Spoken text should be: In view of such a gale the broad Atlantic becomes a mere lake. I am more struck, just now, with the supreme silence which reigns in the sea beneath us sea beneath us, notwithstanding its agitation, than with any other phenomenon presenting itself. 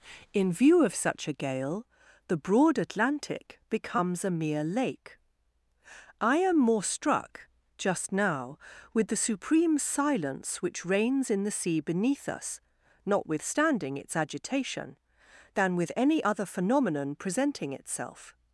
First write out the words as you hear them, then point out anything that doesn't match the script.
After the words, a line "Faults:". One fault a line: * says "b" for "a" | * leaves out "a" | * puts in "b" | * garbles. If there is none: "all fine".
In view of such a gale the broad Atlantic becomes a mere lake. I am more struck, just now, with the supreme silence which reigns in the sea beneath us, notwithstanding its agitation, than with any other phenomenon presenting itself.
Faults:
* leaves out "sea beneath us"